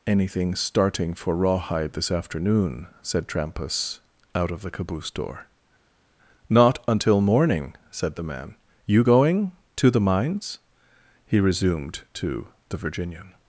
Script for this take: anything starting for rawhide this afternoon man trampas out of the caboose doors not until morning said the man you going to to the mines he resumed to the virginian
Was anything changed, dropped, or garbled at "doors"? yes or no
yes